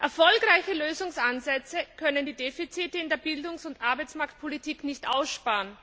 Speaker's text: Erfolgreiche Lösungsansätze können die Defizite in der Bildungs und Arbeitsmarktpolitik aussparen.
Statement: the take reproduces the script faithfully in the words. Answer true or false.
false